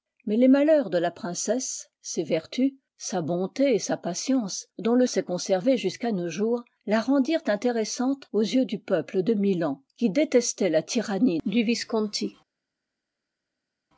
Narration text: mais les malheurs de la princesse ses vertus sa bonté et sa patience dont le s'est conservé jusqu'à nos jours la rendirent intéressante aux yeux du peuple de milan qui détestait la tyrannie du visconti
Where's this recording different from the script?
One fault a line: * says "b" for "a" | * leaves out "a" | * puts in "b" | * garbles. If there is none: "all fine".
all fine